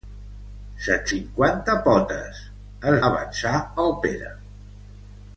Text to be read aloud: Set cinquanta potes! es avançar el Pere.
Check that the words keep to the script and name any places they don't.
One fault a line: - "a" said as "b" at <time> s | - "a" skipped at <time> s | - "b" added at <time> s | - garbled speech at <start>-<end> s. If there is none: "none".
none